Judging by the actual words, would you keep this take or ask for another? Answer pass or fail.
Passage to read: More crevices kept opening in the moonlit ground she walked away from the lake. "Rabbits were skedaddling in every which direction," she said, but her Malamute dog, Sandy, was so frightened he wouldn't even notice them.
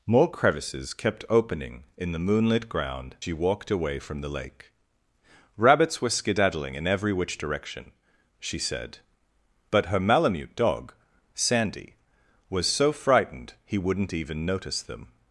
pass